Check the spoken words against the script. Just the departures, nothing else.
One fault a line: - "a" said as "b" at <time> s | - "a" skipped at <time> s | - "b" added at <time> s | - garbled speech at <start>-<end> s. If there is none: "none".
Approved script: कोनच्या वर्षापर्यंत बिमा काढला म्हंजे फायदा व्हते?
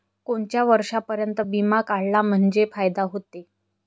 none